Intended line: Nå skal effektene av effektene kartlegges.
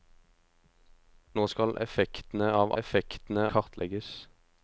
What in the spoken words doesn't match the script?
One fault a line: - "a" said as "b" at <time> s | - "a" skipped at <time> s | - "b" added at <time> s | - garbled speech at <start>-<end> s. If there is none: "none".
none